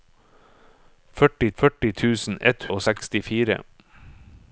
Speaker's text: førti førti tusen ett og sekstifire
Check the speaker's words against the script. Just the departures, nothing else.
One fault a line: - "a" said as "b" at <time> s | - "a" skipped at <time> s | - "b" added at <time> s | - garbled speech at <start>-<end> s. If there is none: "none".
none